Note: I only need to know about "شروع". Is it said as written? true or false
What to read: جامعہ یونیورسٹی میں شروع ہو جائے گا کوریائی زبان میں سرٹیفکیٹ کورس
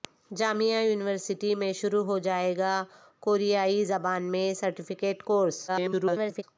true